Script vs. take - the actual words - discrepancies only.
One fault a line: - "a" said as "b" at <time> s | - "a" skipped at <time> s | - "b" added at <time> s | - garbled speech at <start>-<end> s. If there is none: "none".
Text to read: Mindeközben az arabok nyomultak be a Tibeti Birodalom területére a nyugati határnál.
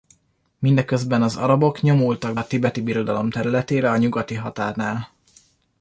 - "be" skipped at 2.4 s